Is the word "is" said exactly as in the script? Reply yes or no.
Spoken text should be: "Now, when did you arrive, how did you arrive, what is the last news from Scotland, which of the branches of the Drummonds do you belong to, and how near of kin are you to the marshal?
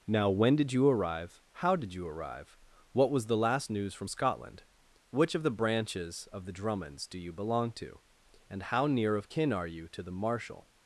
no